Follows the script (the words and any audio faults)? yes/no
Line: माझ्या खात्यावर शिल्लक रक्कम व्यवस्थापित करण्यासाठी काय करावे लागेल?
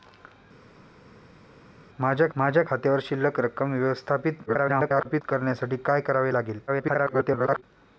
no